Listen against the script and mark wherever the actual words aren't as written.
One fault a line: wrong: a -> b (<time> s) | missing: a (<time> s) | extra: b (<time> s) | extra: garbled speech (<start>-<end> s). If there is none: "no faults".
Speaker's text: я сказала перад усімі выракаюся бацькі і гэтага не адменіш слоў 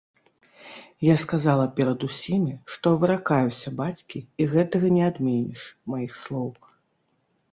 extra: што (2.7 s)
extra: маіх (6.0 s)